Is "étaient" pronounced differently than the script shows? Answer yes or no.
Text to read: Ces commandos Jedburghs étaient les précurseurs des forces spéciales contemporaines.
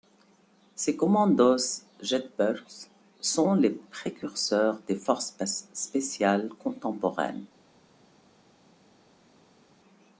yes